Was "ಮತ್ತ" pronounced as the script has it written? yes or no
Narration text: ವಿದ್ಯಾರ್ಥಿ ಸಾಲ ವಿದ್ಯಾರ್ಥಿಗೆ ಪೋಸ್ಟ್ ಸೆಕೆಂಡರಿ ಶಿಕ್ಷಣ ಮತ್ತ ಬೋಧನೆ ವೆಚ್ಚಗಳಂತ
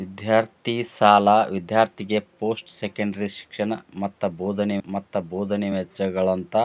yes